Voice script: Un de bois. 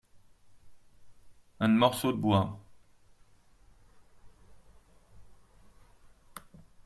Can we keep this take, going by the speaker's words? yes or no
no